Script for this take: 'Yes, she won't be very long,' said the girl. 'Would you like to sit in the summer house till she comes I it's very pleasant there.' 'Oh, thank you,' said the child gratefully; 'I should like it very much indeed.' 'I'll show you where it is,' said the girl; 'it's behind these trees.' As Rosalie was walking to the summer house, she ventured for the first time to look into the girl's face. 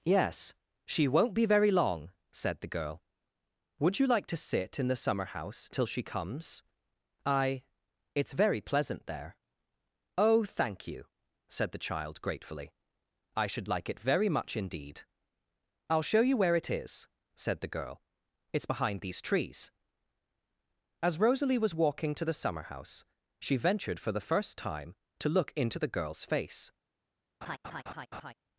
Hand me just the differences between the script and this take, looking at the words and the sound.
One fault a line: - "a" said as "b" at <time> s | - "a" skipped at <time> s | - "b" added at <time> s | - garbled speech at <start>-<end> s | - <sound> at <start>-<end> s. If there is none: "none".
- laugh at 27.4-28.3 s